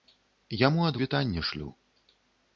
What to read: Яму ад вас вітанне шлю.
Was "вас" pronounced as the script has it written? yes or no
no